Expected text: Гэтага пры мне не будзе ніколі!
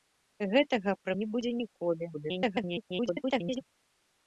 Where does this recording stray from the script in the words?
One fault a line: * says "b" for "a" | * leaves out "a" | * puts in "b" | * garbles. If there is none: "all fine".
* leaves out "мне"
* garbles